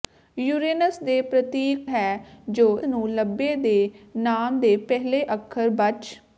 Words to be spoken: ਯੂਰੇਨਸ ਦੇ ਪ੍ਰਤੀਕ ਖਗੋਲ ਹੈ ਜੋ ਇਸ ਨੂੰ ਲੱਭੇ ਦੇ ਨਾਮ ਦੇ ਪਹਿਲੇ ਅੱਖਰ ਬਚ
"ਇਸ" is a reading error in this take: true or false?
true